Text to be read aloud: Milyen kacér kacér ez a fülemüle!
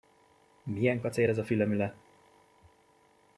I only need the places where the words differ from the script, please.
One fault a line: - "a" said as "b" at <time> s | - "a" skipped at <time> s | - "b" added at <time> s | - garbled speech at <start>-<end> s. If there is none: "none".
- "kacér" skipped at 1.3 s